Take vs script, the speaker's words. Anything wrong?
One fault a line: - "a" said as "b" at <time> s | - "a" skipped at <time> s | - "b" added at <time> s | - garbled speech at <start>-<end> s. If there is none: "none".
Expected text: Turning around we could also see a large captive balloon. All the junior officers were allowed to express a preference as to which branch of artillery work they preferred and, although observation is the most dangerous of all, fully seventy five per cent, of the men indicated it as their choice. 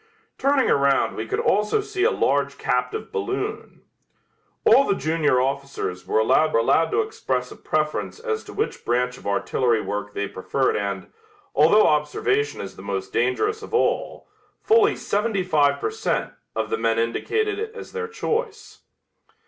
- "allowed" added at 6.6 s